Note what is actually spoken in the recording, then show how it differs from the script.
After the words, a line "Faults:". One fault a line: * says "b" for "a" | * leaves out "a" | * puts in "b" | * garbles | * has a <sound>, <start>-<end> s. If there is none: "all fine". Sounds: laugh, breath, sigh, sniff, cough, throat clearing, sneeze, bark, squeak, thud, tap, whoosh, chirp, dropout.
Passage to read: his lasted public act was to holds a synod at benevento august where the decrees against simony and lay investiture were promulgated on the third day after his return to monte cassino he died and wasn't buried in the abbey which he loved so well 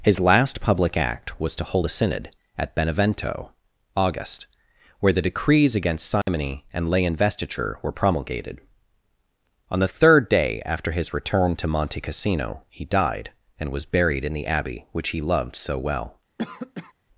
his last public act was to hold a synod at benevento august where the decrees against simony and lay investiture were promulgated on the third day after his return to monte cassino he died and was buried in the abbey which he loved so well
Faults:
* says "last" for "lasted"
* says "hold" for "holds"
* has a dropout, 6.2-6.3 s
* says "was" for "wasn't"
* has a cough, 16.4-16.9 s